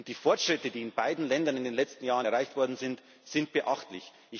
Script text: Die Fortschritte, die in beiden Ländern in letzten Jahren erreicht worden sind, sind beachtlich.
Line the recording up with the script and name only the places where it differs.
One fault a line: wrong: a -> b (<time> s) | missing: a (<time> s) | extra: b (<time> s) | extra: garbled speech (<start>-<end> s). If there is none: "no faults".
extra: den (1.6 s)